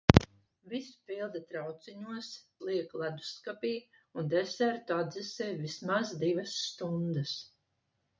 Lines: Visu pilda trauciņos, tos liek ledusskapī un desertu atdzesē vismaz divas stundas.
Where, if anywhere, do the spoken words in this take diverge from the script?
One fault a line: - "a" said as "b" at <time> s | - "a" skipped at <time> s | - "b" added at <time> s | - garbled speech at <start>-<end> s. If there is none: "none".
- "tos" skipped at 2.3 s